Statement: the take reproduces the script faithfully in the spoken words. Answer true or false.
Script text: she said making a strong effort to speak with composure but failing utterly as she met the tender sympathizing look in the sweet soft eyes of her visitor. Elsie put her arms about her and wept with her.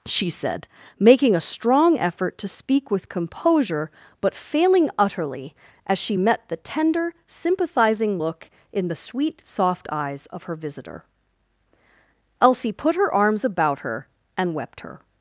false